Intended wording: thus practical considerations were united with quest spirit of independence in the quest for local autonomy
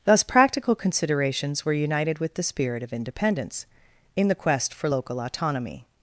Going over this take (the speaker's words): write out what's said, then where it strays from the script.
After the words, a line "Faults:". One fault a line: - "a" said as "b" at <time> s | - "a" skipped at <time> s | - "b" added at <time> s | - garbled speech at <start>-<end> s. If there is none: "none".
thus practical considerations were united with the spirit of independence in the quest for local autonomy
Faults:
- "quest" said as "the" at 2.3 s